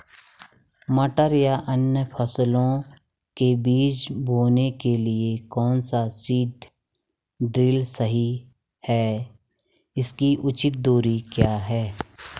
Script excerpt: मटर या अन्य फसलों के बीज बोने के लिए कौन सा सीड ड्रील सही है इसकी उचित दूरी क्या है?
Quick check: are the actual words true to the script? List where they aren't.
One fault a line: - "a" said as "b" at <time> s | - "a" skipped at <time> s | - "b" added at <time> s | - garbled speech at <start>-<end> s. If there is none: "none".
none